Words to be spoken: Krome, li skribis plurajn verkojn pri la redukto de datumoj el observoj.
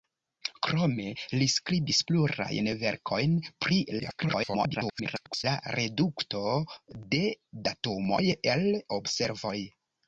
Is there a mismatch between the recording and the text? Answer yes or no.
yes